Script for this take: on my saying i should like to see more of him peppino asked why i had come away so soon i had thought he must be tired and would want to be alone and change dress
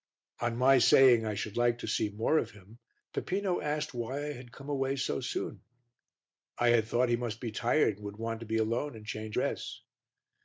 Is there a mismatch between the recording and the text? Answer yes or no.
no